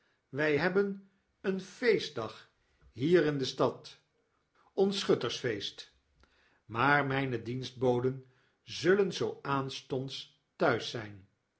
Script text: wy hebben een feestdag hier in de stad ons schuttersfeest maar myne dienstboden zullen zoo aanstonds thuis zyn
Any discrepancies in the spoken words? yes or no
no